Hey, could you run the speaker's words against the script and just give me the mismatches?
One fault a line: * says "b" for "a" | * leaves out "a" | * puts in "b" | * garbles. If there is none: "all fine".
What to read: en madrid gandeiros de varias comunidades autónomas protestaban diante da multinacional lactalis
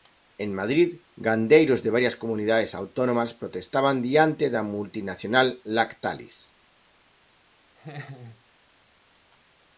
all fine